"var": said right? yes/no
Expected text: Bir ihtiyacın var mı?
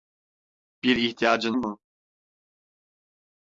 no